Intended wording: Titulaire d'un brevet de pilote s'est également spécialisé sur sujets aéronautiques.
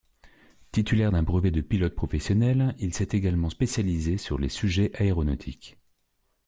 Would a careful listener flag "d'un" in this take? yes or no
no